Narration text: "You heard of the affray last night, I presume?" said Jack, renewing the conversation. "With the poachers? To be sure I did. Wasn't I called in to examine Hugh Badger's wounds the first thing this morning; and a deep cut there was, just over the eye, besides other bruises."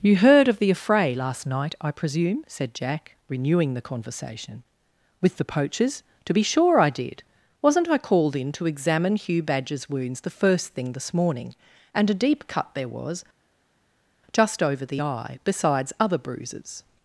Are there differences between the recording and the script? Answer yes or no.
no